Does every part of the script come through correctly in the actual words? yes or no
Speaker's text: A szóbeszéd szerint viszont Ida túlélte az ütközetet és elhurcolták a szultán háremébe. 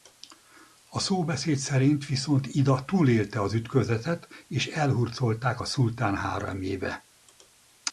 yes